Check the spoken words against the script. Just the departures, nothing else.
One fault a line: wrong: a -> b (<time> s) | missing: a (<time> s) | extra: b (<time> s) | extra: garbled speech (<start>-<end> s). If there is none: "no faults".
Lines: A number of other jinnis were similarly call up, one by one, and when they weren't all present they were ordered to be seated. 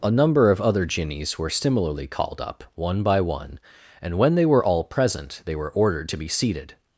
wrong: call -> called (2.1 s)
wrong: weren't -> were (4.5 s)